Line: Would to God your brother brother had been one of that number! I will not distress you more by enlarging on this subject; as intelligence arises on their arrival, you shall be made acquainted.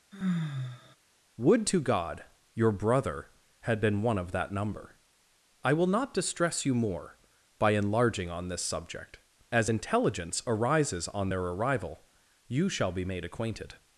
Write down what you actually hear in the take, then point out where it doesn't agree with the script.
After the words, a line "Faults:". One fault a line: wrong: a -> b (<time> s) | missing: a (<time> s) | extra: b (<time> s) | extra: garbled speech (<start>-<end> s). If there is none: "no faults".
Would to God your brother had been one of that number! I will not distress you more by enlarging on this subject; as intelligence arises on their arrival, you shall be made acquainted.
Faults:
missing: brother (3.3 s)